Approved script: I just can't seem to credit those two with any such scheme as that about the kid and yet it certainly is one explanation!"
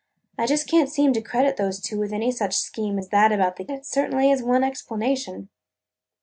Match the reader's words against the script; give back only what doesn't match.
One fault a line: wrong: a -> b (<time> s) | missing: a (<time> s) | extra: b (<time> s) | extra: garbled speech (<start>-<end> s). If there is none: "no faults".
missing: kid and yet (3.7 s)